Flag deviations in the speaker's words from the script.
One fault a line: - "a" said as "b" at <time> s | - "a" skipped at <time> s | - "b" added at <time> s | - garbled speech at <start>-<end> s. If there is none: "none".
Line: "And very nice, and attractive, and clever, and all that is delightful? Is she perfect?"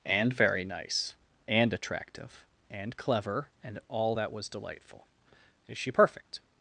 - "is" said as "was" at 4.3 s